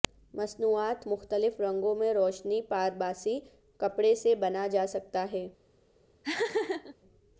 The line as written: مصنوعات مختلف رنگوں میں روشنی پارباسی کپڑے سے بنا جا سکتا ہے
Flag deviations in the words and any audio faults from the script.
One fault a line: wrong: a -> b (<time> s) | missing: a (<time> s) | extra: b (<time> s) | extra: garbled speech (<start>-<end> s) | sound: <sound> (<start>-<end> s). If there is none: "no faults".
sound: laugh (6.2-7.0 s)